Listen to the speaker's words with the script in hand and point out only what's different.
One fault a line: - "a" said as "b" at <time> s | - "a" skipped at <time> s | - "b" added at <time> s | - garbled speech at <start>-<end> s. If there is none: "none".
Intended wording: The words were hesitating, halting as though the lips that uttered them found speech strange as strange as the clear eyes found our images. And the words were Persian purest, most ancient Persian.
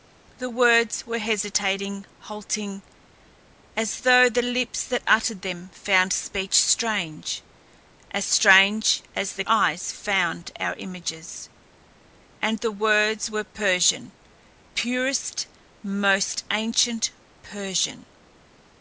- "clear" skipped at 9.4 s